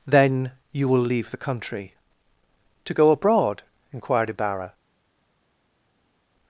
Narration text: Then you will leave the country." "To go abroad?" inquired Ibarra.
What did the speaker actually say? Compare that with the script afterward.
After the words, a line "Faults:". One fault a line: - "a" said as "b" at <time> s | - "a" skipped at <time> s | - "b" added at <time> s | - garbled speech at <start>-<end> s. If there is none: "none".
Then you will leave the country." "To go abroad?" inquired Ibarra.
Faults:
none